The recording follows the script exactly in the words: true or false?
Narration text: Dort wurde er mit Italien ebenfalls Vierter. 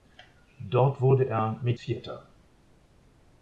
false